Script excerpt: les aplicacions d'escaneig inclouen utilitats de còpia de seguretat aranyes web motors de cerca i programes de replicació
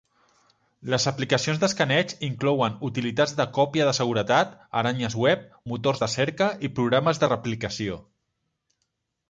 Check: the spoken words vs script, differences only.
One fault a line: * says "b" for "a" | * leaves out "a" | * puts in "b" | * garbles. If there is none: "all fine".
all fine